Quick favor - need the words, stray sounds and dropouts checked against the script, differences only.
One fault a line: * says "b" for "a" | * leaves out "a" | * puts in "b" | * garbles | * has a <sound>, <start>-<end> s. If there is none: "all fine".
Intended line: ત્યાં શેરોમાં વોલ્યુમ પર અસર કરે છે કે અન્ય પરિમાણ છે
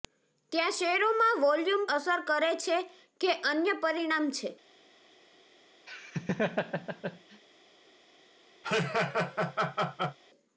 * leaves out "પર"
* has a laugh, 5.9-7.4 s
* has a laugh, 8.6-10.2 s